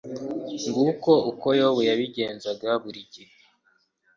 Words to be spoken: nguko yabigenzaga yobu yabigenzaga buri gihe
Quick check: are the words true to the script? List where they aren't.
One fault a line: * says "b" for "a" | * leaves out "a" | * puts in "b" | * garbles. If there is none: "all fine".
* says "uko" for "yabigenzaga"